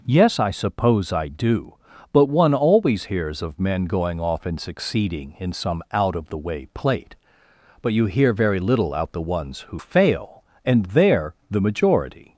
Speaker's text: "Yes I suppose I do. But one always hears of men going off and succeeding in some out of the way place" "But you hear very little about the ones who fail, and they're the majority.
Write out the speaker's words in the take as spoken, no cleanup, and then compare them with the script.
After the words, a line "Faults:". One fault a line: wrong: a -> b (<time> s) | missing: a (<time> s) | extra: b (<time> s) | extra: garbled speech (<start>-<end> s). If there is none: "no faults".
"Yes I suppose I do. But one always hears of men going off and succeeding in some out of the way plate" "But you hear very little out the ones who fail, and they're the majority.
Faults:
wrong: place -> plate (6.7 s)
wrong: about -> out (8.9 s)